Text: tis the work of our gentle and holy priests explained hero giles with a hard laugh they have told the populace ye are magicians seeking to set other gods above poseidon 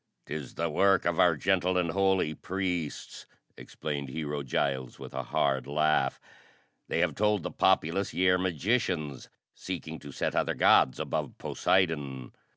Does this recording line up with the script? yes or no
yes